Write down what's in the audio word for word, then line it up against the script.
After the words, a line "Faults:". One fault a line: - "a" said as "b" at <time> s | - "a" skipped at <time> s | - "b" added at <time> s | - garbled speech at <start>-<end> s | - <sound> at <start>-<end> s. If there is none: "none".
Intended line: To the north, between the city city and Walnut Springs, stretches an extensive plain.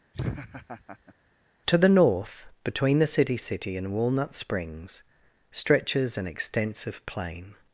To the north, between the city city and Walnut Springs, stretches an extensive plain.
Faults:
- laugh at 0.1-1.1 s